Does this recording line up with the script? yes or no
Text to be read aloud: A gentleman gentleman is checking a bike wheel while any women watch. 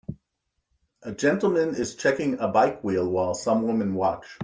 no